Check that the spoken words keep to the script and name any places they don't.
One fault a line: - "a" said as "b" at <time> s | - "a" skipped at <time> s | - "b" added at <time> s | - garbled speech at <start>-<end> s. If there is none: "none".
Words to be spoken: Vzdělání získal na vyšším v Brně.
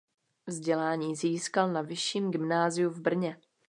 - "gymnáziu" added at 2.3 s